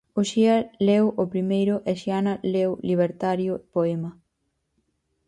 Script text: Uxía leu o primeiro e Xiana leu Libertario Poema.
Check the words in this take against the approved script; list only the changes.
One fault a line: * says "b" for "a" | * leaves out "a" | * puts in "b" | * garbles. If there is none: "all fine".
all fine